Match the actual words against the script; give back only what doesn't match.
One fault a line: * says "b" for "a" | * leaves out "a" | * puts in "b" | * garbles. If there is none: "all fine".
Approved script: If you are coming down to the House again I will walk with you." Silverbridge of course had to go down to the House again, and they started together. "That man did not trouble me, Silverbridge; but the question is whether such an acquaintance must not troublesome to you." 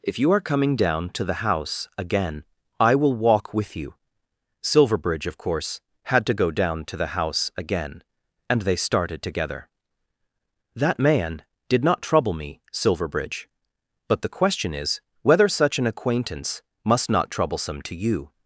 all fine